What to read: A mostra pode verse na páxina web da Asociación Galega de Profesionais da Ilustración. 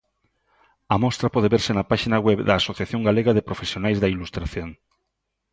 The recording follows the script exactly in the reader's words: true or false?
true